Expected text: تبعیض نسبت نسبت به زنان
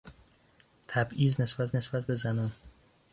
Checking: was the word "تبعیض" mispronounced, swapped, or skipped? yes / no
no